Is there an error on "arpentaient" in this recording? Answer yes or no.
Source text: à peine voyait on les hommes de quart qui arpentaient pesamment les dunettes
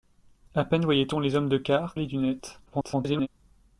yes